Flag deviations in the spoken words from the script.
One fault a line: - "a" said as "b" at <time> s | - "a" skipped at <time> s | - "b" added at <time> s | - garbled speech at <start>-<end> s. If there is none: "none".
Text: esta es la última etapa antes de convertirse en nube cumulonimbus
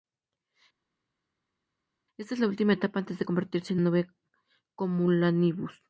none